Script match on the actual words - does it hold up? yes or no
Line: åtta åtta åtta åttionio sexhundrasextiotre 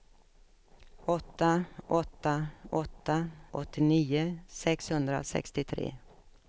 yes